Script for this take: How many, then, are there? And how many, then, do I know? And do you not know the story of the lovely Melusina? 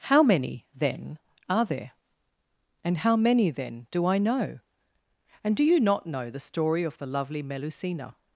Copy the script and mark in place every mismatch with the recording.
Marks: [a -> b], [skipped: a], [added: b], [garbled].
How many, then, are there? And how many, then, do I know? And do you not know the story of the lovely Melusina?